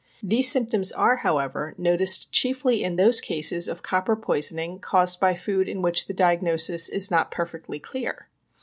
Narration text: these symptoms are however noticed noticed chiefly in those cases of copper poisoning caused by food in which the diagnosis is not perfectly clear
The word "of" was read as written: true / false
true